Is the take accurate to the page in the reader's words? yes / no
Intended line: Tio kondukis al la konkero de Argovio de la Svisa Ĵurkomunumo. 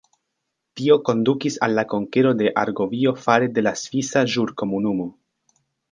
no